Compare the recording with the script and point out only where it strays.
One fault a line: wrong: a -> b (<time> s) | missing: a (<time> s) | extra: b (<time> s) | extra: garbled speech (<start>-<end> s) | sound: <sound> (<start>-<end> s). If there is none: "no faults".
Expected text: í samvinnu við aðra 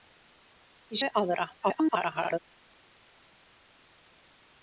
missing: samvinnu (1.0 s)
extra: garbled speech (1.6-2.4 s)